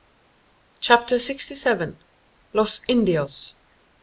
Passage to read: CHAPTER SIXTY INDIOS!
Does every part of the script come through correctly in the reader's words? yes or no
no